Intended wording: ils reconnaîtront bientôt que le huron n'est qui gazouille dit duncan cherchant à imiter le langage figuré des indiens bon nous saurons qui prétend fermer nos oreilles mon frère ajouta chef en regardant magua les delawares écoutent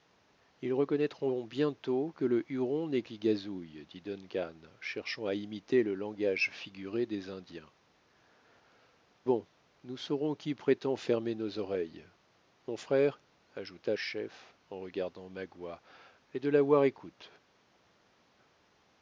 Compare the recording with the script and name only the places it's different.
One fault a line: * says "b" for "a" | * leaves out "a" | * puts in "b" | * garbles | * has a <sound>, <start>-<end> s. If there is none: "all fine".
all fine